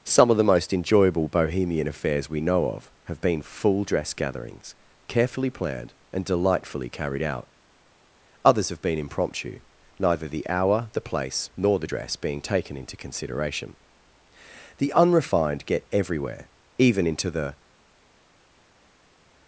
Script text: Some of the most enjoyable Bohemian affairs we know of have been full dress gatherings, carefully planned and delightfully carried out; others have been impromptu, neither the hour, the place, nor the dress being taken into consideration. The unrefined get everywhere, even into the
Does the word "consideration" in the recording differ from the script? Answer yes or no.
no